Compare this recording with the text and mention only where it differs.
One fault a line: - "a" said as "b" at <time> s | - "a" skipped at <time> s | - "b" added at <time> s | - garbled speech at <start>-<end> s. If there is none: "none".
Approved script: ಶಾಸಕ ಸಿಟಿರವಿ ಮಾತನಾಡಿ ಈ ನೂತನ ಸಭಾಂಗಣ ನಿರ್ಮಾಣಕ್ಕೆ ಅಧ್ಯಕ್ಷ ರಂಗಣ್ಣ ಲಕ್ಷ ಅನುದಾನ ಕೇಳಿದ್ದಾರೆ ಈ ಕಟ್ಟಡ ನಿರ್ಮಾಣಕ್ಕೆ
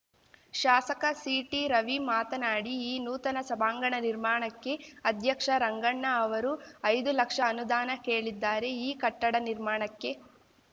- "ಅವರು ಐದು" added at 6.2 s